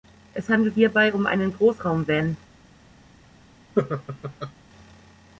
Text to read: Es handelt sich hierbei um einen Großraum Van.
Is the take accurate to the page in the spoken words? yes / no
no